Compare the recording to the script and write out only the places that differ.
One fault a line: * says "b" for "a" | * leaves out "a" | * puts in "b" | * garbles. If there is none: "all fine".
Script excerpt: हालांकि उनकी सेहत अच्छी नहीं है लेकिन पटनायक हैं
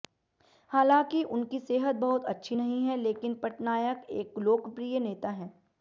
* puts in "बहुत"
* puts in "एक लोकप्रिय नेता"